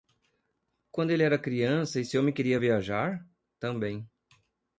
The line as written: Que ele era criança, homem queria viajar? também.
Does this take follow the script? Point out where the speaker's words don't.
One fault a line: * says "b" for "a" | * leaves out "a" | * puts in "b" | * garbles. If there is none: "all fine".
* says "Quando" for "Que"
* puts in "esse"